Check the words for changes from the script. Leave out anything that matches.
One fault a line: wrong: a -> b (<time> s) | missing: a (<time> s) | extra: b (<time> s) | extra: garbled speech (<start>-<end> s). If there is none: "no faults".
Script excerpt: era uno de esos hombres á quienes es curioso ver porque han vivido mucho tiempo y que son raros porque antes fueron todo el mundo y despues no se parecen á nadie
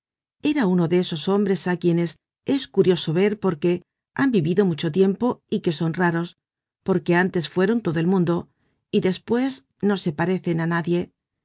no faults